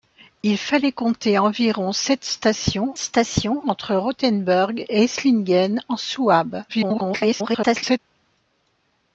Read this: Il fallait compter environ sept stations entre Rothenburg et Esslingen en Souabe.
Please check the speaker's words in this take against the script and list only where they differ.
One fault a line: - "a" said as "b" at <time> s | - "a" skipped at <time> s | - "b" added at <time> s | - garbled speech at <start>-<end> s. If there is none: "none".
- "stations" added at 3.0 s
- garbled speech at 6.7-8.0 s